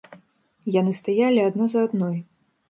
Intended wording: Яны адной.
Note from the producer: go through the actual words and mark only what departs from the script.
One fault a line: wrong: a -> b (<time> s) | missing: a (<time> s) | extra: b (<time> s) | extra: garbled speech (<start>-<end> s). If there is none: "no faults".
extra: стаялі адна за (1.0 s)